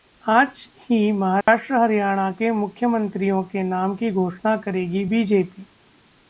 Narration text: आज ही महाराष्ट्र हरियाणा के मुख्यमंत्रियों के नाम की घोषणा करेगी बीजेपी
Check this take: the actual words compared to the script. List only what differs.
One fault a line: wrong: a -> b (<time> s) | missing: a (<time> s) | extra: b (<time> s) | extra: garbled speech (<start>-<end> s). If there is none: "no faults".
no faults